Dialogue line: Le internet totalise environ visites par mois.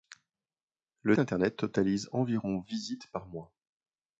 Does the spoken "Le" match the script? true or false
true